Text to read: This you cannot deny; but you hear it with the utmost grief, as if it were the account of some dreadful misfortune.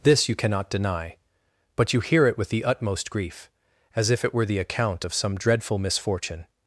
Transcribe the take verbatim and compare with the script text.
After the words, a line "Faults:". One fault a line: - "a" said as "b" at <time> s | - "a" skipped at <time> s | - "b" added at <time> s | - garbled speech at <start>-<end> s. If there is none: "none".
This you cannot deny; but you hear it with the utmost grief, as if it were the account of some dreadful misfortune.
Faults:
none